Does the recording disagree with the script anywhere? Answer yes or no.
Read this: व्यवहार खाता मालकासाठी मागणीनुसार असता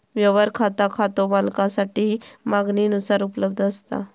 yes